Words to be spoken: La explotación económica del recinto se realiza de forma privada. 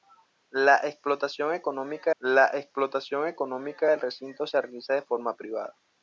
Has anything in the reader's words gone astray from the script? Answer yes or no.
yes